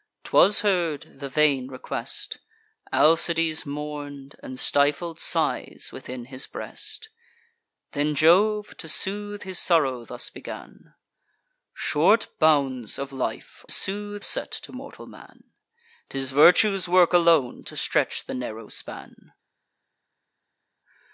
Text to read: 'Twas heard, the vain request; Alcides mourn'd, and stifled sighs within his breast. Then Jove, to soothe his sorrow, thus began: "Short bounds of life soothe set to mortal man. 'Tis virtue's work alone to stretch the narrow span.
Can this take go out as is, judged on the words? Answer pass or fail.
pass